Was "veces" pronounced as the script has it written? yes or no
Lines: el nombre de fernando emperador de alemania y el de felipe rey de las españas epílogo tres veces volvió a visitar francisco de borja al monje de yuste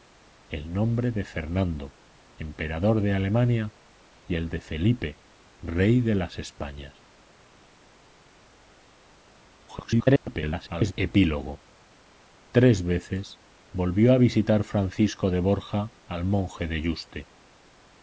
yes